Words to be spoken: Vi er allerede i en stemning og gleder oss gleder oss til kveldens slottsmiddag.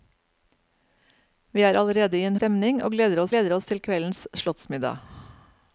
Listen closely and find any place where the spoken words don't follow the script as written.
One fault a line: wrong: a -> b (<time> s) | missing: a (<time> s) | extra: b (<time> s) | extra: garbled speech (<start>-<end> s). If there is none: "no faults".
no faults